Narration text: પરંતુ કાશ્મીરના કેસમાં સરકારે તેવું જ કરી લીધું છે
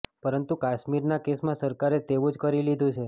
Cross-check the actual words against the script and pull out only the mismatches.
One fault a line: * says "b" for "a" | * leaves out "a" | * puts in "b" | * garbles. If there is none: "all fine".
all fine